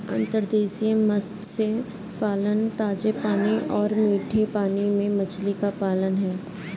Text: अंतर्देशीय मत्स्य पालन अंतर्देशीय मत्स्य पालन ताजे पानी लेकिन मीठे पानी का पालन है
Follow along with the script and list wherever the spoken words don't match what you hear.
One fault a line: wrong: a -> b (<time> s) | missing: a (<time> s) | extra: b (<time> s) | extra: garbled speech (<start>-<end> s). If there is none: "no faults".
missing: अंतर्देशीय मत्स्य पालन (2.7 s)
wrong: लेकिन -> और (3.7 s)
extra: में मछली (4.9 s)